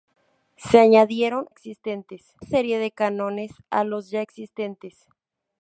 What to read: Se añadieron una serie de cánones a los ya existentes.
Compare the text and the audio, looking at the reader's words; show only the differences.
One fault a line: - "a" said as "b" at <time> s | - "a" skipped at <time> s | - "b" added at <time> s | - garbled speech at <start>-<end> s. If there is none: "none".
- "una" said as "existentes" at 1.5 s